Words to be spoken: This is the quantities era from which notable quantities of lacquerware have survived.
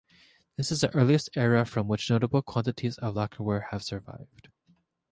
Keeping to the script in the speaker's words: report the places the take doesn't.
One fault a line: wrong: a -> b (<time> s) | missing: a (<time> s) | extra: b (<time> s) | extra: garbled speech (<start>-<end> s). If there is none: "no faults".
wrong: quantities -> earliest (0.9 s)